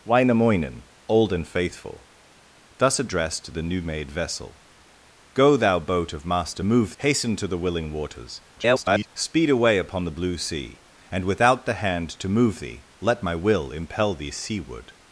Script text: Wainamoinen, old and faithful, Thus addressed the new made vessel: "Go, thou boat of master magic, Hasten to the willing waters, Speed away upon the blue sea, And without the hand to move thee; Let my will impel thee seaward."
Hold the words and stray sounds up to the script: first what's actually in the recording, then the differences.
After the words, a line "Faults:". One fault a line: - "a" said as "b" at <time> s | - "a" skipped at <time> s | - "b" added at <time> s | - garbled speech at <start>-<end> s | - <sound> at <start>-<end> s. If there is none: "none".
Wainamoinen, old and faithful, Thus addressed the new made vessel: "Go, thou boat of master move, Hasten to the willing waters, [garbled] Speed away upon the blue sea, And without the hand to move thee; Let my will impel thee seaward."
Faults:
- "magic" said as "move" at 6.6 s
- garbled speech at 8.6-9.1 s